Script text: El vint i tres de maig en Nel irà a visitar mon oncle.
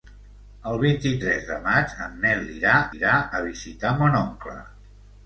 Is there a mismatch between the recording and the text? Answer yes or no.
yes